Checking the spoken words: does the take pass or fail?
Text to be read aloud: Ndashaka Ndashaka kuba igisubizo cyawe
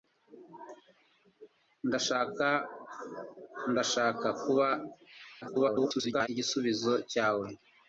fail